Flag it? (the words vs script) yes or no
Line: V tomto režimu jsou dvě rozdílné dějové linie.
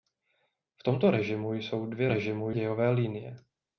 yes